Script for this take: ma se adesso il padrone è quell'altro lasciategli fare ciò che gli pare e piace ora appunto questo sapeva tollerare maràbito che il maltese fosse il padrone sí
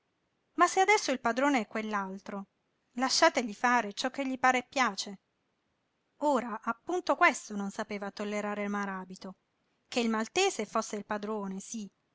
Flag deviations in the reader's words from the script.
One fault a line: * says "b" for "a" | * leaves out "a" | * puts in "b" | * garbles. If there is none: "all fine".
* puts in "non"